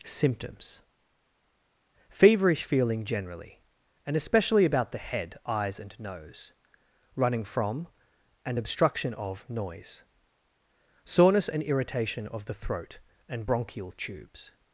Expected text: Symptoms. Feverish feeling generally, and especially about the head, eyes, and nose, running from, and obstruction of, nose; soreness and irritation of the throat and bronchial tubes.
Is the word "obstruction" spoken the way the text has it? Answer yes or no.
yes